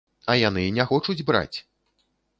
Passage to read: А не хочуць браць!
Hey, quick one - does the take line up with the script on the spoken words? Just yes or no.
no